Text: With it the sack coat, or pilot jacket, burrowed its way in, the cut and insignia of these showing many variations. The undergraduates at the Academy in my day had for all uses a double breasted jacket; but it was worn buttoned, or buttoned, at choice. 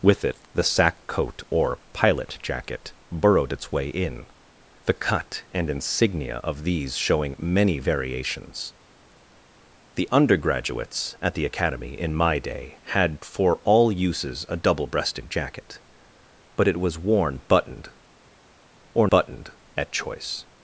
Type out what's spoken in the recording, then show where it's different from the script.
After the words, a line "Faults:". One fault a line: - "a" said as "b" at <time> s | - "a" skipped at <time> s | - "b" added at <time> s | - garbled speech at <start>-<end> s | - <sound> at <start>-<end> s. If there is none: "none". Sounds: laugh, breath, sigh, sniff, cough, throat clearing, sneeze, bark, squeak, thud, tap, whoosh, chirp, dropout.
With it the sack coat, or pilot jacket, burrowed its way in, the cut and insignia of these showing many variations. The undergraduates at the Academy in my day had for all uses a double breasted jacket; but it was worn buttoned, or buttoned, at choice.
Faults:
none